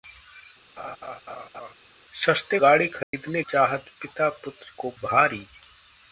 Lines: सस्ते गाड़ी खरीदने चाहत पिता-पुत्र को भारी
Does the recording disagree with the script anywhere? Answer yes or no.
no